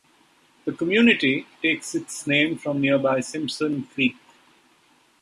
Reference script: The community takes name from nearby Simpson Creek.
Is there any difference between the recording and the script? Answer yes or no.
yes